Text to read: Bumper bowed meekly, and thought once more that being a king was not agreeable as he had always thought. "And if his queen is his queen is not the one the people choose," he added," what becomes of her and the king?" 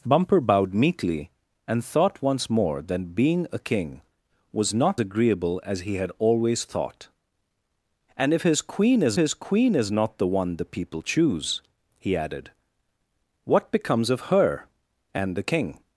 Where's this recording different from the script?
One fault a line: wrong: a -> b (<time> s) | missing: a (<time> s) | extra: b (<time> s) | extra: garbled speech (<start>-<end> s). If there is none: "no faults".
no faults